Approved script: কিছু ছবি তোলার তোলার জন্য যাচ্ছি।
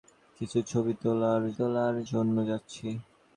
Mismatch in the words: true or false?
false